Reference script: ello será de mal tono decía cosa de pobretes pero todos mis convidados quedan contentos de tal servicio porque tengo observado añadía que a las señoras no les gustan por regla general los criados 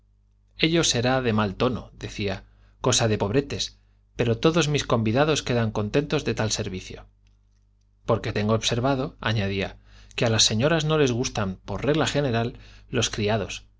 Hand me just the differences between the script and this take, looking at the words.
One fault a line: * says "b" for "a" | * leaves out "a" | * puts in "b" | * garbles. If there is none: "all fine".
all fine